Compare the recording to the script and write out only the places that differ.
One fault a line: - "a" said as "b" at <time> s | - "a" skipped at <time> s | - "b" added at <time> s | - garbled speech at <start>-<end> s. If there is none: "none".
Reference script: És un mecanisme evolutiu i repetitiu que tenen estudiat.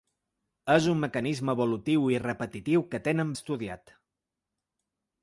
none